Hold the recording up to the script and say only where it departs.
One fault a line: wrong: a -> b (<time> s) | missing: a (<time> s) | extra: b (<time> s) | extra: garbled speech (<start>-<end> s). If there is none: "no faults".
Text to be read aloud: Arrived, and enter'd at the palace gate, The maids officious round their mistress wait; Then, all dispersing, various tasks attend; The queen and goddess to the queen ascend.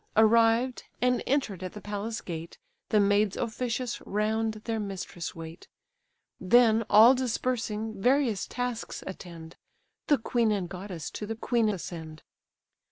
no faults